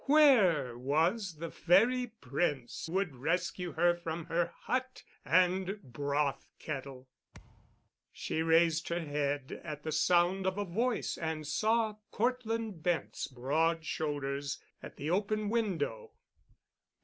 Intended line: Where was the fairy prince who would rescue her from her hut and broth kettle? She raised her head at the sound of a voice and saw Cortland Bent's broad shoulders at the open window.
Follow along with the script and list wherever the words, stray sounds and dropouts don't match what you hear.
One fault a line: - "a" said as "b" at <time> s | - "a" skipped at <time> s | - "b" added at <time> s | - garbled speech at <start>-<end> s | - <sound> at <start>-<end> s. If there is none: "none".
- "who" skipped at 2.9 s
- thud at 7.3-7.9 s